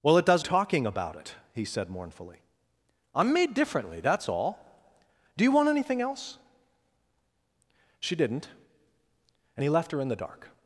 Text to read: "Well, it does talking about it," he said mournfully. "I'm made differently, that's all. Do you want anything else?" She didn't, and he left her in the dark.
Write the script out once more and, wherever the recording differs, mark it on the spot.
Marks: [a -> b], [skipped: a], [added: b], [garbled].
"Well, it does talking about it," he said mournfully. "I'm made differently, that's all. Do you want anything else?" She didn't, and he left her in the dark.